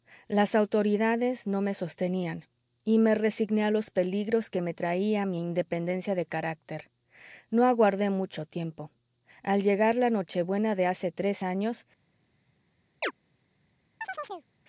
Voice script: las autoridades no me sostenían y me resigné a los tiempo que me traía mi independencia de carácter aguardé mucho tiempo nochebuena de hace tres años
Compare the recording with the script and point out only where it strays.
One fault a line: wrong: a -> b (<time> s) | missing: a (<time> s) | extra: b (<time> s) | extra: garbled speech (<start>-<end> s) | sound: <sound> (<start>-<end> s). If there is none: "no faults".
wrong: tiempo -> peligros (3.9 s)
extra: no (7.5 s)
extra: al llegar la (9.4 s)
sound: chirp (13.0-13.1 s)
sound: chirp (14.0-14.5 s)